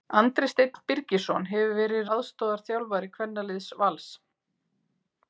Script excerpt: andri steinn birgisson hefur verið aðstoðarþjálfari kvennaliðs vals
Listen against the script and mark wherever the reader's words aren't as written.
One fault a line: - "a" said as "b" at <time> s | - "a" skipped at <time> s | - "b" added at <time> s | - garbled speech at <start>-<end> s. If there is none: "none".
none